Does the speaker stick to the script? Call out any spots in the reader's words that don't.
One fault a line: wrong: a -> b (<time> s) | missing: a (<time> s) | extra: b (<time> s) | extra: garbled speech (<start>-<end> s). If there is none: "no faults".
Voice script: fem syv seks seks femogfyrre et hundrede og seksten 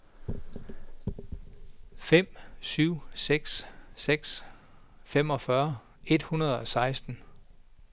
no faults